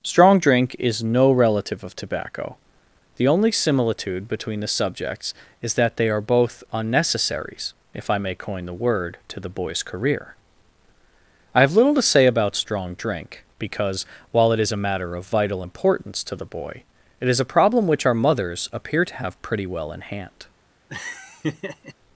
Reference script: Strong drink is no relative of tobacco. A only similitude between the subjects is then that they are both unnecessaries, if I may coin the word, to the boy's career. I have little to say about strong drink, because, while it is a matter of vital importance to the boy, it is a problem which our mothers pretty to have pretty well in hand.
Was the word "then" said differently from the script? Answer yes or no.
yes